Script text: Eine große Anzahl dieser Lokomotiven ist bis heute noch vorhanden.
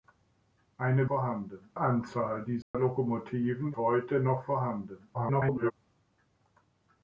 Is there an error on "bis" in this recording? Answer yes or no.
yes